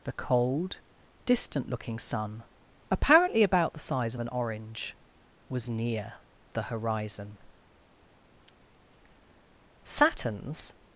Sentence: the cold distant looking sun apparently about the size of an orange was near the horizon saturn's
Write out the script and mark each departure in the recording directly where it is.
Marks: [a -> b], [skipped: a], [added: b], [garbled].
the cold distant looking sun apparently about the size of an orange was near the horizon saturn's